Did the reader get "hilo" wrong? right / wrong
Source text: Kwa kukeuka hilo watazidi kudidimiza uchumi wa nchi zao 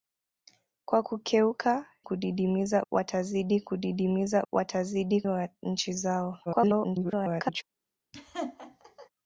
wrong